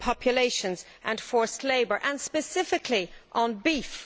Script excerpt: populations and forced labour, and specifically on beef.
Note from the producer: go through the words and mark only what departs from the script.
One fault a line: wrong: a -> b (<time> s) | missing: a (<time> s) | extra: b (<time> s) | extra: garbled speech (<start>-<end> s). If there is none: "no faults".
no faults